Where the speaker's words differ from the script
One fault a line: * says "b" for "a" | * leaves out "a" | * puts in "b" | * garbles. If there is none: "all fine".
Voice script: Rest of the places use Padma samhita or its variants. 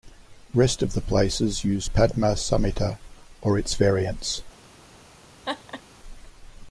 all fine